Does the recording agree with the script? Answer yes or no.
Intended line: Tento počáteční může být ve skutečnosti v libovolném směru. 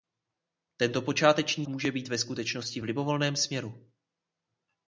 yes